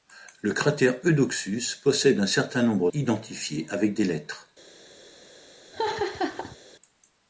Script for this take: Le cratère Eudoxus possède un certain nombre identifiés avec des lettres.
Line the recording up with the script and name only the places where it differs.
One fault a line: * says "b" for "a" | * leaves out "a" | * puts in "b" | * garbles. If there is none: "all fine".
all fine